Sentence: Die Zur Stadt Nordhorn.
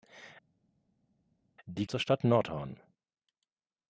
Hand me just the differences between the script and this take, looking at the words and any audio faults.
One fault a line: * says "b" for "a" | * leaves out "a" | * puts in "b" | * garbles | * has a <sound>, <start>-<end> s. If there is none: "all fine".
all fine